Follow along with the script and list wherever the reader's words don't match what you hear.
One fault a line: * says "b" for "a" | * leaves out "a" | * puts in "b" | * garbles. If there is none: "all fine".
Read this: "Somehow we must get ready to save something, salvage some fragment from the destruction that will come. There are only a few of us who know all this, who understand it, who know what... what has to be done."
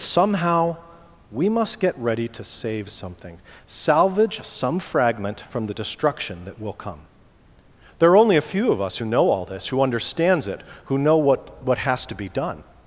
* says "understands" for "understand"